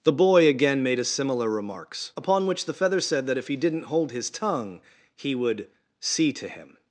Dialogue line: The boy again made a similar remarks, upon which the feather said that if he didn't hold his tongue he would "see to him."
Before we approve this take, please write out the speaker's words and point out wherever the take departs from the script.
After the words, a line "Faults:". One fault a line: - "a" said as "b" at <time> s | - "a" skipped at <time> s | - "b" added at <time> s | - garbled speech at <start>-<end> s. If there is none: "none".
The boy again made a similar remarks, upon which the feather said that if he didn't hold his tongue he would "see to him."
Faults:
none